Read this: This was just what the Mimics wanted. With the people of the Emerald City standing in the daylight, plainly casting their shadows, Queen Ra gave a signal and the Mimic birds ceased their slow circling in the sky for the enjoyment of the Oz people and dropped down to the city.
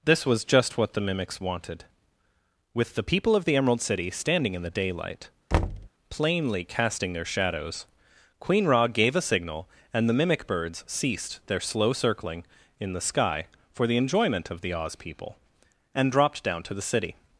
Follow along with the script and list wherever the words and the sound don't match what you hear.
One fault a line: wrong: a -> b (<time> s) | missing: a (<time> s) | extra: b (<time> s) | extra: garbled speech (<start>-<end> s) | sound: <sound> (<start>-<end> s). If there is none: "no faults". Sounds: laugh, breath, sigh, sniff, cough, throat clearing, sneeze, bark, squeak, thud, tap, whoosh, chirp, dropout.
sound: thud (5.5-5.9 s)